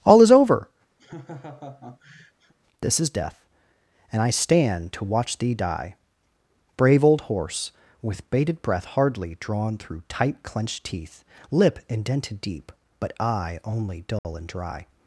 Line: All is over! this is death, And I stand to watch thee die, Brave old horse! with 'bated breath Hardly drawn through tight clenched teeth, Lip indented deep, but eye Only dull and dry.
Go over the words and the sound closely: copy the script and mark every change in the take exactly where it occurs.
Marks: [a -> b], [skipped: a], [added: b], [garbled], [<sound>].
All is over! [laugh] this is death, And I stand to watch thee die, Brave old horse! with 'bated breath Hardly drawn through tight clenched teeth, Lip indented deep, but eye Only dull [dropout] and dry.